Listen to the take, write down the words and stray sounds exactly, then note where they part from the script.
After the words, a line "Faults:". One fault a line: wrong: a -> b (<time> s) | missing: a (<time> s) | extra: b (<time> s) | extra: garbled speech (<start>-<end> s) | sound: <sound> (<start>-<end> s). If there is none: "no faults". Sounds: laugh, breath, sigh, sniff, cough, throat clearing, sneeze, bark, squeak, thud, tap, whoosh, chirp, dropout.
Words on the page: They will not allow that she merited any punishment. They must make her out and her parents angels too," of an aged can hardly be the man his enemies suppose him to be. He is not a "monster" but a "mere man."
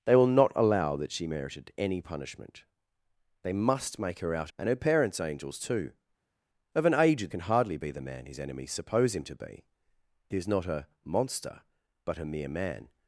They will not allow that she merited any punishment. They must make her out and her parents angels too," of an aged can hardly be the man his enemies suppose him to be. He is not a "monster" but a "mere man."
Faults:
no faults